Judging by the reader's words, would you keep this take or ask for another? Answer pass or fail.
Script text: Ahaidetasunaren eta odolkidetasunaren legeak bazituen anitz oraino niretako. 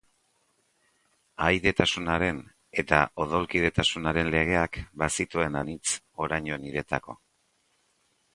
pass